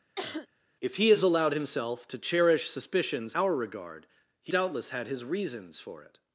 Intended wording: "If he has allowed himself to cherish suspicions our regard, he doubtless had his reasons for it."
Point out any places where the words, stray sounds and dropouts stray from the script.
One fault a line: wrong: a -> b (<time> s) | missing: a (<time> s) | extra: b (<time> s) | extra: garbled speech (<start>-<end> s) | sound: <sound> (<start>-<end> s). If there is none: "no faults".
sound: cough (0.2-0.5 s)